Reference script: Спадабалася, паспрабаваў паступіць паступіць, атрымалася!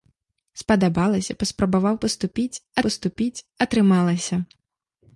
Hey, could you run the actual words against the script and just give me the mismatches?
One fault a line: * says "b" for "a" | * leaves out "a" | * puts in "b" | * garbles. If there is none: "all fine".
all fine